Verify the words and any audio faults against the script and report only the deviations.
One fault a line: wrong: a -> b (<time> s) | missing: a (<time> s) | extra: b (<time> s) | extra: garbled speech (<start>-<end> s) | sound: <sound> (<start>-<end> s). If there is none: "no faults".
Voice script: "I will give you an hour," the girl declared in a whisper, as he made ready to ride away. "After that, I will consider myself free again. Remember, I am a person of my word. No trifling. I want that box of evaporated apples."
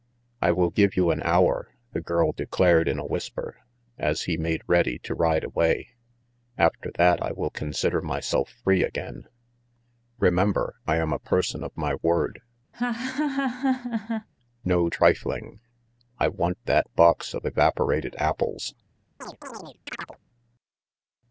sound: laugh (12.7-14.3 s)
sound: chirp (19.2-20.2 s)